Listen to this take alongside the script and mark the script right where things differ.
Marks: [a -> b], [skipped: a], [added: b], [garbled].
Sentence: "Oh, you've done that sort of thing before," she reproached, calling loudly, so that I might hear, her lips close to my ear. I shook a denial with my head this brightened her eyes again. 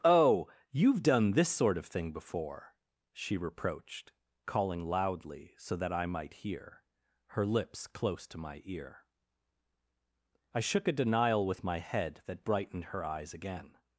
"Oh, you've done [that -> this] sort of thing before," she reproached, calling loudly, so that I might hear, her lips close to my ear. I shook a denial with my head [this -> that] brightened her eyes again.